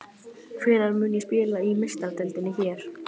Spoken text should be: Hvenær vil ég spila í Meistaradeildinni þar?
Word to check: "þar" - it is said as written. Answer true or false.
false